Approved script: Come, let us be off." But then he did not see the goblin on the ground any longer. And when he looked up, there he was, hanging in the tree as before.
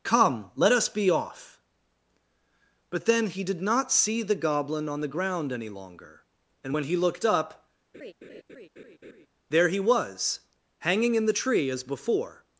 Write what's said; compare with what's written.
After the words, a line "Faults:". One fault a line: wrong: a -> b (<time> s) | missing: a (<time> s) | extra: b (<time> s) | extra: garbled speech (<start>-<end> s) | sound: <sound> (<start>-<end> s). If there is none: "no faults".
Come, let us be off." But then he did not see the goblin on the ground any longer. And when he looked up, there he was, hanging in the tree as before.
Faults:
sound: laugh (7.9-9.3 s)